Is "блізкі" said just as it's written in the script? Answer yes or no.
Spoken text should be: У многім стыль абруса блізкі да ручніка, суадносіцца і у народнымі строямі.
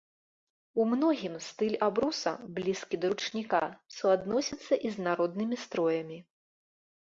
yes